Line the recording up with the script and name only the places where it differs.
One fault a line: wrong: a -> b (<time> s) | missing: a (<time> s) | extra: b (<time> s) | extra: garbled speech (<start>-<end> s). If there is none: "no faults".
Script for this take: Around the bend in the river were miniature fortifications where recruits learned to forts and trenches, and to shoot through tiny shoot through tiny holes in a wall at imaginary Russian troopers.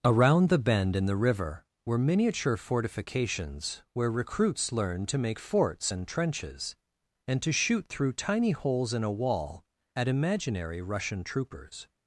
extra: make (5.2 s)
missing: shoot through tiny (8.5 s)